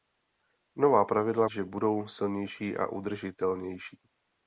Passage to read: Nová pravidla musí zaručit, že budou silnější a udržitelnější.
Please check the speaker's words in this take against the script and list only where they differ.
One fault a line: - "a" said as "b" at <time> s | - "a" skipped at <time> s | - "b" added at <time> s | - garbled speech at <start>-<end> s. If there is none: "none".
- "musí zaručit" skipped at 1.5 s